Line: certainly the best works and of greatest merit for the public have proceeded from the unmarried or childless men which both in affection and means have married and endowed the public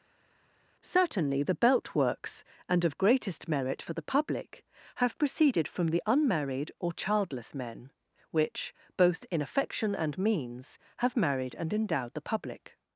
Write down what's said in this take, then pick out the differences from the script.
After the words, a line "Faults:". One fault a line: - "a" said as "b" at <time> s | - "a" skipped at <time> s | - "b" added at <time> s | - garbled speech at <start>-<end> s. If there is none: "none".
certainly the belt works and of greatest merit for the public have proceeded from the unmarried or childless men which both in affection and means have married and endowed the public
Faults:
- "best" said as "belt" at 1.5 s